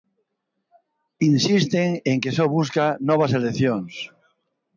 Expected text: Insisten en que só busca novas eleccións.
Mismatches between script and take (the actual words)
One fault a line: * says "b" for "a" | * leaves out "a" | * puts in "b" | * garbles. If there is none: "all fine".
all fine